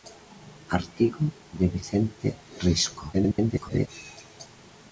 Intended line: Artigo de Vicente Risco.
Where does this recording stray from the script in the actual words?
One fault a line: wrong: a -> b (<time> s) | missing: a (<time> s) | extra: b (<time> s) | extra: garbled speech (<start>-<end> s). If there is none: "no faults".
extra: garbled speech (3.1-3.9 s)